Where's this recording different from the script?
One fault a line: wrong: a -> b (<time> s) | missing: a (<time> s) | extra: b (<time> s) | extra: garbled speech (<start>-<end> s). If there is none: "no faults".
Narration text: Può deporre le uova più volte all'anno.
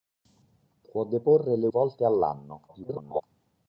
missing: uova più (1.7 s)
extra: garbled speech (2.7-3.2 s)